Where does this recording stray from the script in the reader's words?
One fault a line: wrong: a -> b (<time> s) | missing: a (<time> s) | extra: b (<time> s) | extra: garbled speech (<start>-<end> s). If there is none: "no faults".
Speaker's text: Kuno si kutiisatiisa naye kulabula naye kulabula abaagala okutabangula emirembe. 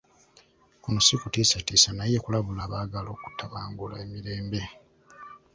missing: naye kulabula (2.6 s)